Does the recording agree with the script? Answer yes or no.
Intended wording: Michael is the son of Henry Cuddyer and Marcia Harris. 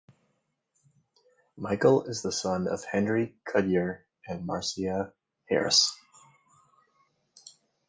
yes